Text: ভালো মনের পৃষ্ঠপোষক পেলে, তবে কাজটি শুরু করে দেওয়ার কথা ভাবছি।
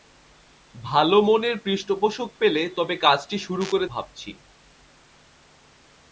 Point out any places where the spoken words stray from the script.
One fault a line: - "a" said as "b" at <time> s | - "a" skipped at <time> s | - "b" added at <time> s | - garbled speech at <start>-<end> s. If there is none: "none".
- "দেওয়ার কথা" skipped at 3.9 s